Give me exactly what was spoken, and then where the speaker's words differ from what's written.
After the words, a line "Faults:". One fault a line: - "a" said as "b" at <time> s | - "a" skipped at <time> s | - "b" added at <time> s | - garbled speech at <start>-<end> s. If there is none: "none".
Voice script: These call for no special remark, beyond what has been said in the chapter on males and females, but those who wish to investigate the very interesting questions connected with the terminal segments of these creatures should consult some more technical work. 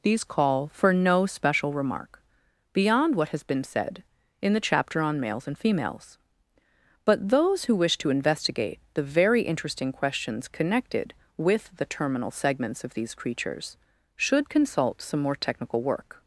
These call for no special remark, beyond what has been said in the chapter on males and females, but those who wish to investigate the very interesting questions connected with the terminal segments of these creatures should consult some more technical work.
Faults:
none